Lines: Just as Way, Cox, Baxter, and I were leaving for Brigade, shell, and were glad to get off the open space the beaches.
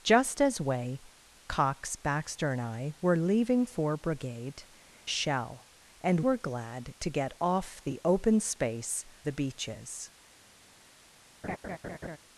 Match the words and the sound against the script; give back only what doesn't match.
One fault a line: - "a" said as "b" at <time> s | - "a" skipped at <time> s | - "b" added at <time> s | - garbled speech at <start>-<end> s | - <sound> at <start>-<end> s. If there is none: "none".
- laugh at 11.4-12.2 s